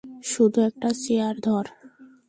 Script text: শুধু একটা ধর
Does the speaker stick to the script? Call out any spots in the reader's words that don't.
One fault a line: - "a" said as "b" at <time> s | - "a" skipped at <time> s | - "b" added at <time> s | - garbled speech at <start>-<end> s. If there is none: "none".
- "চেয়ার" added at 1.0 s